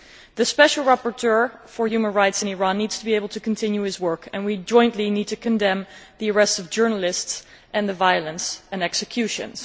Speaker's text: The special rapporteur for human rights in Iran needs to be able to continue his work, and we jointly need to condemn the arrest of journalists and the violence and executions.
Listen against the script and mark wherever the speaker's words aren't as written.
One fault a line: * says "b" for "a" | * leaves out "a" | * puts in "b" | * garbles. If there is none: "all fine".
all fine